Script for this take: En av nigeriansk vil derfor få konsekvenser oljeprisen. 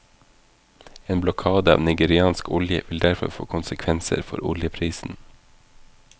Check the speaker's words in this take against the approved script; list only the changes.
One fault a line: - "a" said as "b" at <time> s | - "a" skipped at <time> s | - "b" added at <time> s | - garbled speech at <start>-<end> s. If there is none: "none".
- "blokade" added at 1.2 s
- "olje" added at 2.5 s
- "for" added at 4.2 s